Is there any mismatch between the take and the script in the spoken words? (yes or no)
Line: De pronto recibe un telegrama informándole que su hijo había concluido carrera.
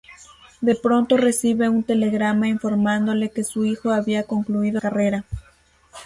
no